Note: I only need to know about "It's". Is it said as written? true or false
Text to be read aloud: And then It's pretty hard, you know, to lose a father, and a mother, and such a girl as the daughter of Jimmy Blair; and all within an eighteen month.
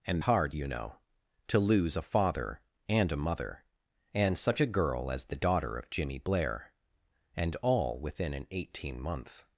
false